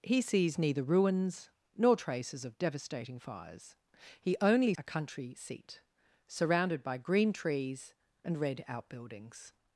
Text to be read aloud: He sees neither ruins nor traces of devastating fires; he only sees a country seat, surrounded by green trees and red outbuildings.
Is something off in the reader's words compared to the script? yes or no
yes